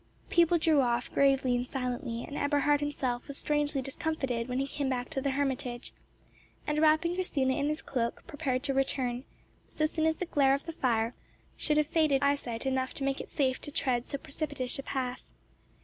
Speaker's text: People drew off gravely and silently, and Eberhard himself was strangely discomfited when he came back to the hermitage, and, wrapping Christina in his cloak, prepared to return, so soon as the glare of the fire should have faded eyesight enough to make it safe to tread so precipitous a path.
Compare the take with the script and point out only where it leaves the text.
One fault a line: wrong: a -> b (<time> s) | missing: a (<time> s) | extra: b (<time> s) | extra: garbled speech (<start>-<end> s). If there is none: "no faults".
no faults